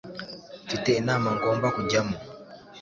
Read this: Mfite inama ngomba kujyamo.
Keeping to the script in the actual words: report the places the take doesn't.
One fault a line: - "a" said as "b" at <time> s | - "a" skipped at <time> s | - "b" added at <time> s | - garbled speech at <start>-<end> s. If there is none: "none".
none